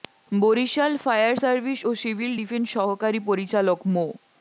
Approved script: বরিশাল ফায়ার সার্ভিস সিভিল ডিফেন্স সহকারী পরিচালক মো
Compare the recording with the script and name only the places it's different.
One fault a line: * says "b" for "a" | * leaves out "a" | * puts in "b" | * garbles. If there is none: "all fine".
* puts in "ও"